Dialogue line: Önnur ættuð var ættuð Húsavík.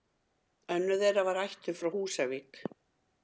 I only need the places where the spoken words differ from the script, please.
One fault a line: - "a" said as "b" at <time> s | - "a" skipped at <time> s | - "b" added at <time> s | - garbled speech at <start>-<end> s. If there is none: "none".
- "ættuð" said as "þeirra" at 1.0 s
- "frá" added at 1.8 s